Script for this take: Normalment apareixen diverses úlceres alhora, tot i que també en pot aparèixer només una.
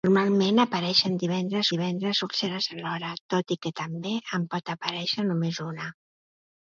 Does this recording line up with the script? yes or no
no